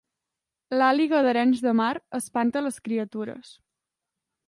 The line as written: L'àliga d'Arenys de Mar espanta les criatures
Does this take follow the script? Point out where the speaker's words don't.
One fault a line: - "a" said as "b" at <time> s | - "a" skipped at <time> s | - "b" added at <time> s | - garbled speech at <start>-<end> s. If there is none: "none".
none